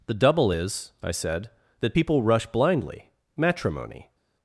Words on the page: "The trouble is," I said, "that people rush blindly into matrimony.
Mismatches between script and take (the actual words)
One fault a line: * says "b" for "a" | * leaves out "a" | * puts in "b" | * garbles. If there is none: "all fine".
* says "double" for "trouble"
* leaves out "into"